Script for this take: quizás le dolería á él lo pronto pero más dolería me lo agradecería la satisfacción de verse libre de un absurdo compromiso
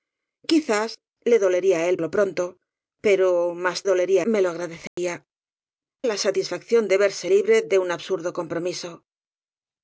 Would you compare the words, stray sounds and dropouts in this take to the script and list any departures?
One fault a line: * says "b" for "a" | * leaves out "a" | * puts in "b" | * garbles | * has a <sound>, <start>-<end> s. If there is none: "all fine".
* has a dropout, 4.9-5.0 s